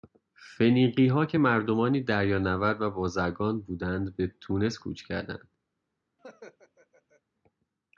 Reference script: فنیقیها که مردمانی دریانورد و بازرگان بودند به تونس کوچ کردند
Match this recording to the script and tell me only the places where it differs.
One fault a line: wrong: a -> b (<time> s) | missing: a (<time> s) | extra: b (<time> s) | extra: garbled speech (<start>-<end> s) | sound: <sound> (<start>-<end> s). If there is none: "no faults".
sound: laugh (6.2-7.2 s)